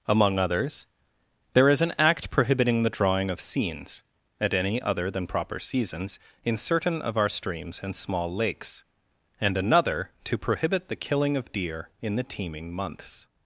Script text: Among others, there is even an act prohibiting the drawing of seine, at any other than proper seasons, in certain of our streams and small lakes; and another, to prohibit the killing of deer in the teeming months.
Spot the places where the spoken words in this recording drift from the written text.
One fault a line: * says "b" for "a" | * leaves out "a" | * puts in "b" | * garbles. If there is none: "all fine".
* leaves out "even"
* says "seines" for "seine"